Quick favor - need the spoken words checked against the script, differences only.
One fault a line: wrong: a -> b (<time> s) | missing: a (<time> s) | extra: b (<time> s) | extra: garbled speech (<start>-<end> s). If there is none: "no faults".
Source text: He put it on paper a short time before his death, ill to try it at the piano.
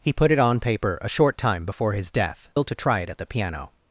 no faults